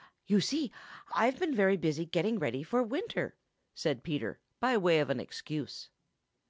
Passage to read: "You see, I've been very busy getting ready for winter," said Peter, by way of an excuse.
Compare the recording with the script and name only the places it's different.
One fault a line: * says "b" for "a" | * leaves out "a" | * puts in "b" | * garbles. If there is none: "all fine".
all fine